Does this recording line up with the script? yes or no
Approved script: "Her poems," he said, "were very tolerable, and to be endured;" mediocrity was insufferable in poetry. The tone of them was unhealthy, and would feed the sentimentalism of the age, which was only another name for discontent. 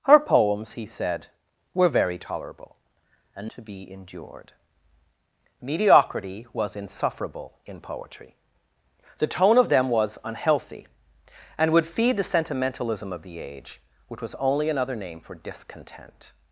yes